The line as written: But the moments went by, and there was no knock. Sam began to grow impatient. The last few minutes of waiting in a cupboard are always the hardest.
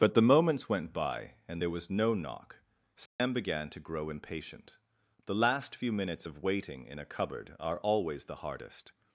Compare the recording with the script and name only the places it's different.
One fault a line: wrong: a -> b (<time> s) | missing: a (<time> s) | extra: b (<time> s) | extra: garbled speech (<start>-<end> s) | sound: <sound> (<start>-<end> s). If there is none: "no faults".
sound: dropout (3.1-3.2 s)